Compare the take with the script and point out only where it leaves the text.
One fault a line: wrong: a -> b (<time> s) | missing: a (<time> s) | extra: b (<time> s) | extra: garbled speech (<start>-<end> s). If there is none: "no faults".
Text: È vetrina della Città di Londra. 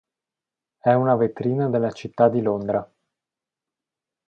extra: una (0.9 s)